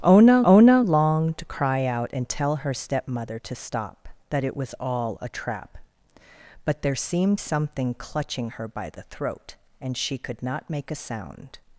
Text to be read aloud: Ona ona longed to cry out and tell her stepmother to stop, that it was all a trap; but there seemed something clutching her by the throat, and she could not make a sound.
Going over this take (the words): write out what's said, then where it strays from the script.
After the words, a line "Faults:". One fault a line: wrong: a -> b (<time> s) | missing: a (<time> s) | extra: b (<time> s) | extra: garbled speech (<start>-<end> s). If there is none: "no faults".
Ona ona longed to cry out and tell her stepmother to stop, that it was all a trap; but there seemed something clutching her by the throat, and she could not make a sound.
Faults:
no faults